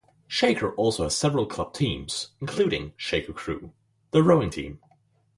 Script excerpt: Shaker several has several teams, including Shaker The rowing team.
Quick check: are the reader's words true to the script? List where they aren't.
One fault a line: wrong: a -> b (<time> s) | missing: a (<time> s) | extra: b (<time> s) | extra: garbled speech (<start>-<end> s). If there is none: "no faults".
wrong: several -> also (0.7 s)
extra: club (1.4 s)
extra: Crew (3.3 s)